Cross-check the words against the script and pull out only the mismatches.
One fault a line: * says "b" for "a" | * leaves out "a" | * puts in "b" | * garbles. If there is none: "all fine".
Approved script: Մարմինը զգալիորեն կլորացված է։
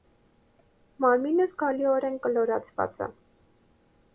all fine